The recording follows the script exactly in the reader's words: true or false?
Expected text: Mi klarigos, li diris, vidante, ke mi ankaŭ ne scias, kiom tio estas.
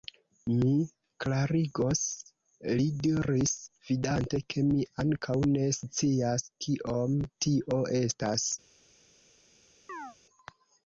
true